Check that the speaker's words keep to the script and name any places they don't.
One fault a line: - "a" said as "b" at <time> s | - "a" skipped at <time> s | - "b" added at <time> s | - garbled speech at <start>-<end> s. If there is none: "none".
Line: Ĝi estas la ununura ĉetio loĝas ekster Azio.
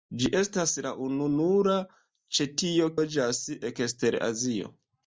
none